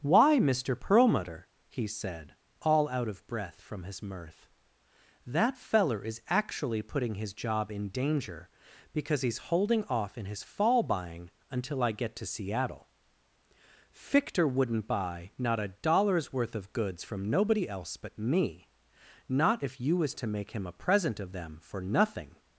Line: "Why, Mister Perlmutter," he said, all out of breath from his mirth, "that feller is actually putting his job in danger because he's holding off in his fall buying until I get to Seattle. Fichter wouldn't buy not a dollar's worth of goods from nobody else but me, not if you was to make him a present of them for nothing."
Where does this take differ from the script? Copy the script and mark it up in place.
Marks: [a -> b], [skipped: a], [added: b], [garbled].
"Why, Mister Perlmutter," he said, all out of breath from his mirth, "that feller is actually putting his job in danger because he's holding off in his fall buying until I get to Seattle. Fichter wouldn't buy not a dollar's worth of goods from nobody else but me, not if you was to make him a present of them for nothing."